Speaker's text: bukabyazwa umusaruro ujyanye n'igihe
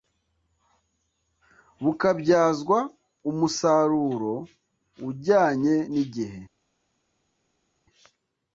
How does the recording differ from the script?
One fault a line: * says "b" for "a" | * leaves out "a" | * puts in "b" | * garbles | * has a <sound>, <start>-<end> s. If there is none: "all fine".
all fine